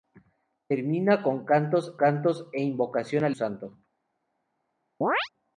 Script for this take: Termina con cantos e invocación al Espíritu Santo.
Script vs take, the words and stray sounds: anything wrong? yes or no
yes